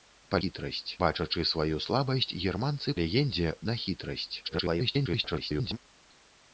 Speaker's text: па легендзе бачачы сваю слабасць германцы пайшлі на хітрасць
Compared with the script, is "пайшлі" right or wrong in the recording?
wrong